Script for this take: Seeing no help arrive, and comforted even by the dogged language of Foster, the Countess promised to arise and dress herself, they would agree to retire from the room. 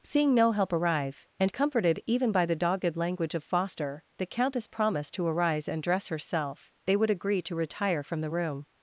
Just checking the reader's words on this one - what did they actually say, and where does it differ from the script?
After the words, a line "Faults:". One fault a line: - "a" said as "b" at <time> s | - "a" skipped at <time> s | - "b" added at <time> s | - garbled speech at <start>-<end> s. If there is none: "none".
Seeing no help arrive, and comforted even by the dogged language of Foster, the Countess promised to arise and dress herself, they would agree to retire from the room.
Faults:
none